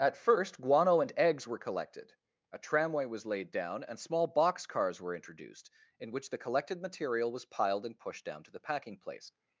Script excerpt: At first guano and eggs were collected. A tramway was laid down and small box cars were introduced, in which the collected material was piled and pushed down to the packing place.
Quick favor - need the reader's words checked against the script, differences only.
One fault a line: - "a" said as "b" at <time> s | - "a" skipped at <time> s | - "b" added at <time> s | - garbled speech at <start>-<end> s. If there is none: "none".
none